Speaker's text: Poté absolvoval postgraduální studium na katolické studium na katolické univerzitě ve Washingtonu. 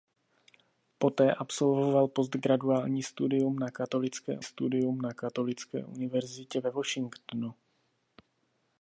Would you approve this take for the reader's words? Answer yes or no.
yes